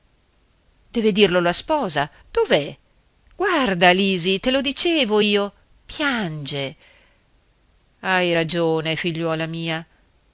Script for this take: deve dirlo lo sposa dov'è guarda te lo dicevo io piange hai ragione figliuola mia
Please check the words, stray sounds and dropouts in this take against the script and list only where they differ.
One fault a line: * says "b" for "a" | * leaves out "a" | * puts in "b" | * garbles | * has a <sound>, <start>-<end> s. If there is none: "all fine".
* says "la" for "lo"
* puts in "lisi"